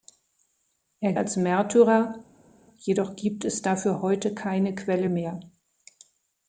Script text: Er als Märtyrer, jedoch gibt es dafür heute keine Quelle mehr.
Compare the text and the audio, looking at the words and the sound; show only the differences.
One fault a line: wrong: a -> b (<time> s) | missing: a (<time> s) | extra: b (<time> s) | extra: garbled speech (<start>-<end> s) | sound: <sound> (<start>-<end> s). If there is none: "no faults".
no faults